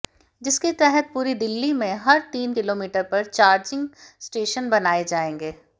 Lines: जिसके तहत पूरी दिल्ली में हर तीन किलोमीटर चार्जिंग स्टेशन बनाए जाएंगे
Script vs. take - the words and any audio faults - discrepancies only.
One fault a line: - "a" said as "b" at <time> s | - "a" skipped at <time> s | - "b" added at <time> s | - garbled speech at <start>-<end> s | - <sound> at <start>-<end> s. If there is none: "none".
- "पर" added at 3.0 s